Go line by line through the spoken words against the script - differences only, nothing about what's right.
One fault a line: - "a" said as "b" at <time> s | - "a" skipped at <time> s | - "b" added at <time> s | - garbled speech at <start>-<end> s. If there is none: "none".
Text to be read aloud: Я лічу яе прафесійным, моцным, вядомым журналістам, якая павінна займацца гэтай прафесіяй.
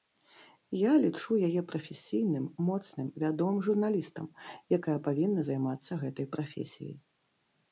none